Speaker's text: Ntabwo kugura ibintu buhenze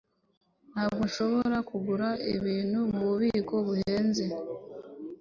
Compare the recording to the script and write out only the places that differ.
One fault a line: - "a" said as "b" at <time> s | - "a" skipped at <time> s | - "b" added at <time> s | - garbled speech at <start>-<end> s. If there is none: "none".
- "nshobora" added at 1.1 s
- "mububiko" added at 2.9 s